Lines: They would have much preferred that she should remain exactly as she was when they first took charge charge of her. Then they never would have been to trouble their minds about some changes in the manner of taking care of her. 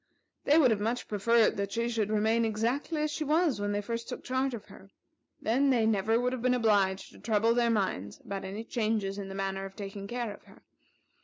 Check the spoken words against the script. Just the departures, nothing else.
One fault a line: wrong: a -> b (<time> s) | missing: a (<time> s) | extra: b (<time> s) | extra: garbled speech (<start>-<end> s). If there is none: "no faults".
missing: charge (4.5 s)
extra: obliged (6.5 s)
wrong: some -> any (8.4 s)